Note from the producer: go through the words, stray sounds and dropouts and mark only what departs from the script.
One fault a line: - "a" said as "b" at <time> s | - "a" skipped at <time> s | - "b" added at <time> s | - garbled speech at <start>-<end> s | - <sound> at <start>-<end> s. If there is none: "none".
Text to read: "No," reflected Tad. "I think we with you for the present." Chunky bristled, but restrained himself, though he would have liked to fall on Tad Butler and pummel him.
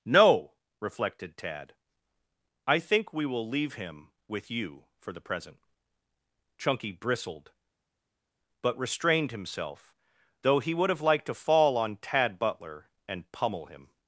- "will leave him" added at 3.3 s